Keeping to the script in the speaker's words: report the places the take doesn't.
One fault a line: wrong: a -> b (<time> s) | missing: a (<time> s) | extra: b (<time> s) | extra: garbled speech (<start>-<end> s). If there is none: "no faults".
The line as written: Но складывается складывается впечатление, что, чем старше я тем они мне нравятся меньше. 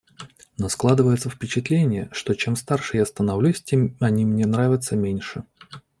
missing: складывается (1.3 s)
extra: становлюсь (3.0 s)